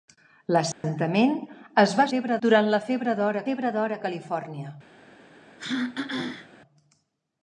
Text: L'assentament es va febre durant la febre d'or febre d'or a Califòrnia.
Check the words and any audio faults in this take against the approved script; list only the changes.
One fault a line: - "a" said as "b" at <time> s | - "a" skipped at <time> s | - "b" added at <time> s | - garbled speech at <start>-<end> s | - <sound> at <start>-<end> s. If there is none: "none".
- dropout at 0.7-0.8 s
- throat clearing at 5.6-6.5 s